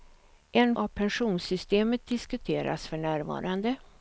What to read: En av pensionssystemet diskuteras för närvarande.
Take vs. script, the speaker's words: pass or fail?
pass